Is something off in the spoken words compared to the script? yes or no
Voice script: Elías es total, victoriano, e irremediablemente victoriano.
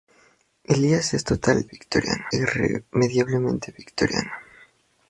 no